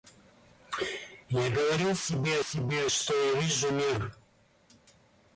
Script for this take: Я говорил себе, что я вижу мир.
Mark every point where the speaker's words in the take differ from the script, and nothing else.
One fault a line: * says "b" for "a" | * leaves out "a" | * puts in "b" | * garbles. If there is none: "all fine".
* puts in "себе"